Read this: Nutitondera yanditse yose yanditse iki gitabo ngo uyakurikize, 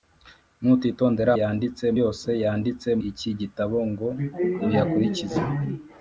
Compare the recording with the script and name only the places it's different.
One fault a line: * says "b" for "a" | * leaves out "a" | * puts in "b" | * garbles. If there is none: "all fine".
all fine